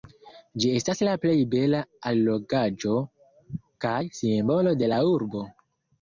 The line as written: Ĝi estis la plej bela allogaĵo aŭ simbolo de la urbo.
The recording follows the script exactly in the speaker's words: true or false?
false